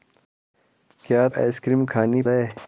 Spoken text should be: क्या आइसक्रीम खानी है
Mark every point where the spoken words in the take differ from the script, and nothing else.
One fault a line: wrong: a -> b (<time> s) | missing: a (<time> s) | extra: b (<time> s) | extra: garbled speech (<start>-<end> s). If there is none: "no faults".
no faults